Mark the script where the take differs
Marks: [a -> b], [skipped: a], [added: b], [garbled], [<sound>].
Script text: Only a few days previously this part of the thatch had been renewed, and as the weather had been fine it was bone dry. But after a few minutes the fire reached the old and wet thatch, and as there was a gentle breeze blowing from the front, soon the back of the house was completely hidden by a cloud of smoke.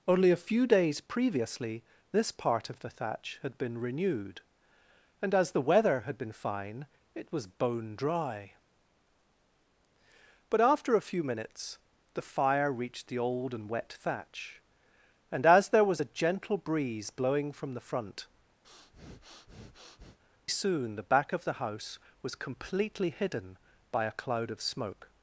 Only a few days previously this part of the thatch had been renewed, and as the weather had been fine it was bone dry. But after a few minutes the fire reached the old and wet thatch, and as there was a gentle breeze blowing from the front, [breath] soon the back of the house was completely hidden by a cloud of smoke.